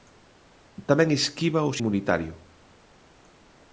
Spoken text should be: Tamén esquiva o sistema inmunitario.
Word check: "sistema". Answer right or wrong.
wrong